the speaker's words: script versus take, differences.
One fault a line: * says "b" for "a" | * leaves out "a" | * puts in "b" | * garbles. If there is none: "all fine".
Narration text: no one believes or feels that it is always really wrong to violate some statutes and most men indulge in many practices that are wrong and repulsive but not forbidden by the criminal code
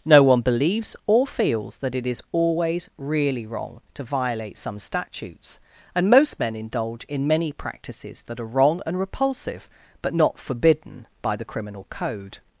all fine